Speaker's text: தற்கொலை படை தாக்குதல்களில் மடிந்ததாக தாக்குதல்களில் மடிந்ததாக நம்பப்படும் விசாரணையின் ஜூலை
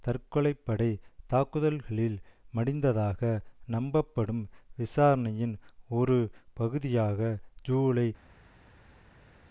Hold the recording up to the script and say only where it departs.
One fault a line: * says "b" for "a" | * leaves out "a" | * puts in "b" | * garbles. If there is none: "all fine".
* says "நம்பப்படும் விசாரணையின் ஒரு பகுதியாக" for "தாக்குதல்களில் மடிந்ததாக நம்பப்படும் விசாரணையின்"